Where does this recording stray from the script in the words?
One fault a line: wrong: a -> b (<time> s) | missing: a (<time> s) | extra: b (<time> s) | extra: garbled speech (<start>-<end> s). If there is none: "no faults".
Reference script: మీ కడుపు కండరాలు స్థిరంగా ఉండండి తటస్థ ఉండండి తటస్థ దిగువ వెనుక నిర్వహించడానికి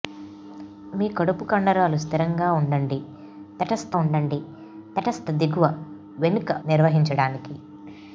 no faults